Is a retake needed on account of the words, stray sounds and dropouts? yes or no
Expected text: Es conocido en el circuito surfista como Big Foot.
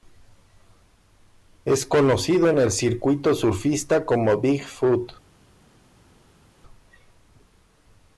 no